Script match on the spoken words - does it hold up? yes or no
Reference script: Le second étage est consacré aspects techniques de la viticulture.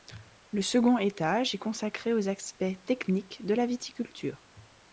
no